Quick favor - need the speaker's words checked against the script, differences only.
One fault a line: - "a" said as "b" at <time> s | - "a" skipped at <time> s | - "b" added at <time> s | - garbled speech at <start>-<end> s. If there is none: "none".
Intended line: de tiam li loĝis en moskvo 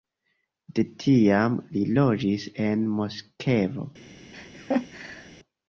none